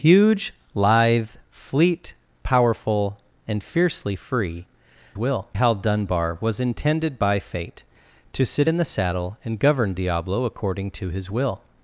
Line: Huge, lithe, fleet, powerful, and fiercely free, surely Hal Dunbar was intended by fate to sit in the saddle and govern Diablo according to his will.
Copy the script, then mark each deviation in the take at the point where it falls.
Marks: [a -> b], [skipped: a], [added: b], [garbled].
Huge, lithe, fleet, powerful, and fiercely free, [surely -> will] Hal Dunbar was intended by fate to sit in the saddle and govern Diablo according to his will.